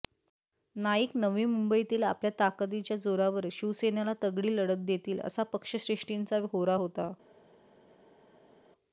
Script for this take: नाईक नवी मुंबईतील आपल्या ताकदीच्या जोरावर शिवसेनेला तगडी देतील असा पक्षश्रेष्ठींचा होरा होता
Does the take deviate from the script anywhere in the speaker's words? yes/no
yes